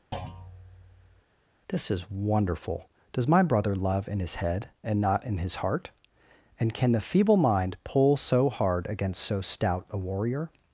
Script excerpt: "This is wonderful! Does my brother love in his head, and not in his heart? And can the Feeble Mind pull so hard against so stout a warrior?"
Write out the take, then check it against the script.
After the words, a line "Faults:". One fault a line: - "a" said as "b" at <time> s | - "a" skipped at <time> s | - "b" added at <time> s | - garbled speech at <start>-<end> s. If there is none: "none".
"This is wonderful! Does my brother love in his head, and not in his heart? And can the Feeble Mind pull so hard against so stout a warrior?"
Faults:
none